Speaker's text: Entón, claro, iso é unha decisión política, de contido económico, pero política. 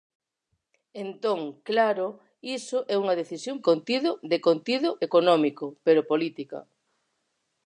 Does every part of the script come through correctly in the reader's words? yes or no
no